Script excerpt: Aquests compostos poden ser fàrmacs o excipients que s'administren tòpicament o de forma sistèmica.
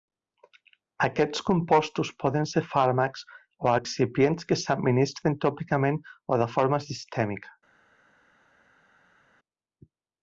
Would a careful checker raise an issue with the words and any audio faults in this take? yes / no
no